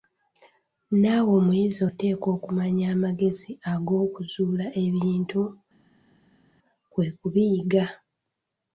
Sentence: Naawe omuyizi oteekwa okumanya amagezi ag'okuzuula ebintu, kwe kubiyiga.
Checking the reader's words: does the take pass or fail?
pass